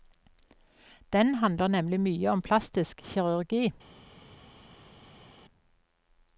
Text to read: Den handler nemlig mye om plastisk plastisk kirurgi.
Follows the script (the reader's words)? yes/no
no